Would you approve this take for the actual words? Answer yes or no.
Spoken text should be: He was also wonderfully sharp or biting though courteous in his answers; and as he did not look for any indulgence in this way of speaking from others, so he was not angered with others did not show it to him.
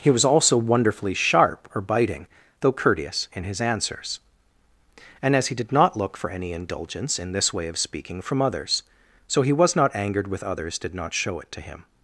yes